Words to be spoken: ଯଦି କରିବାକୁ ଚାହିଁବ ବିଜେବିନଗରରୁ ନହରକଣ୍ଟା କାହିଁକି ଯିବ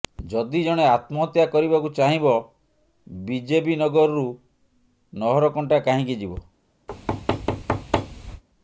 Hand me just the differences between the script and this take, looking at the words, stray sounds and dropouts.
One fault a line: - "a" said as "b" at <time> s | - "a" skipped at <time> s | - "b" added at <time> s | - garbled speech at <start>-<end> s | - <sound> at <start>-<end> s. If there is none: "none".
- "ଜଣେ ଆତ୍ମହତ୍ୟା" added at 0.6 s
- thud at 6.9-8.4 s